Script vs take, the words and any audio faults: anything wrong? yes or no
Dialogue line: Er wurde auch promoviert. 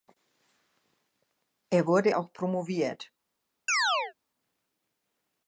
yes